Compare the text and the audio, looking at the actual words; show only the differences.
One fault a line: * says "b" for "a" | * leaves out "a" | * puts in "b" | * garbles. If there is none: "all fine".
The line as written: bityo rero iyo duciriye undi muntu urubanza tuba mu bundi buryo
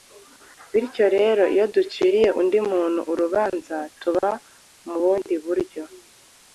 all fine